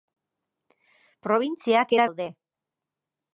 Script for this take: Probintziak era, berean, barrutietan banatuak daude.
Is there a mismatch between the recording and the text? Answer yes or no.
yes